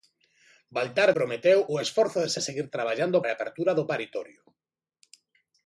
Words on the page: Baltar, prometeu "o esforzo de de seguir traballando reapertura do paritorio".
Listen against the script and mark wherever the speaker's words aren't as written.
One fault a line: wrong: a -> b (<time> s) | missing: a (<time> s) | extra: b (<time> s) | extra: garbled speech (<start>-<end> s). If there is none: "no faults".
no faults